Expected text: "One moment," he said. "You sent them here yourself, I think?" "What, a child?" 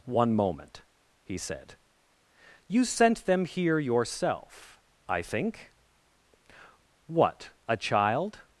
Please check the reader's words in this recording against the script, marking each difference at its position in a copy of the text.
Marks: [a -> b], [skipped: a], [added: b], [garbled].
"One moment," he said. "You sent them here yourself, I think?" "What, a child?"